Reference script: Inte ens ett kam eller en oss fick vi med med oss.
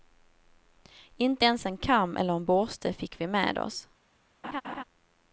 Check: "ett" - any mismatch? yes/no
yes